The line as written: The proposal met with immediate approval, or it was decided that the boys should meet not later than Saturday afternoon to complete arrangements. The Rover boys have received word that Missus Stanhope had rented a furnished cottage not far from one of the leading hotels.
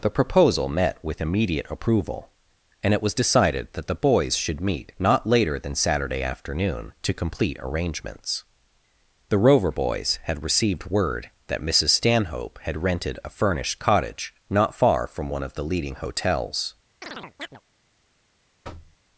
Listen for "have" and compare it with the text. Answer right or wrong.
wrong